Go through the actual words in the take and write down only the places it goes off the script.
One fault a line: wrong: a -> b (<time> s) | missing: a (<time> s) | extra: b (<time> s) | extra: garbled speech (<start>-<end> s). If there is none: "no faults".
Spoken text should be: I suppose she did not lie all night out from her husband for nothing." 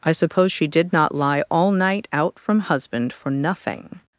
missing: her (2.6 s)